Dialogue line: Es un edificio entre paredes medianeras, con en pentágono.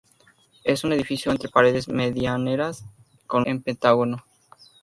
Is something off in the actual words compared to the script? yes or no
no